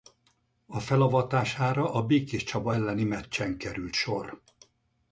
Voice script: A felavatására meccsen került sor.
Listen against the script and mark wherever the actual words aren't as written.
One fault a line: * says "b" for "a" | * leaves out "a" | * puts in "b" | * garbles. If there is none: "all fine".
* puts in "a Békéscsaba elleni"